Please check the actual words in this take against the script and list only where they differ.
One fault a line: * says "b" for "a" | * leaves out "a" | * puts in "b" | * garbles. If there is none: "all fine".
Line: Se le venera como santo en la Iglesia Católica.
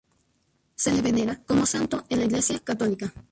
all fine